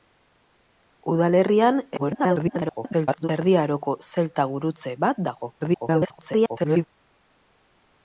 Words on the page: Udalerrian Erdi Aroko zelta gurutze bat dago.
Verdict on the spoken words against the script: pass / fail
fail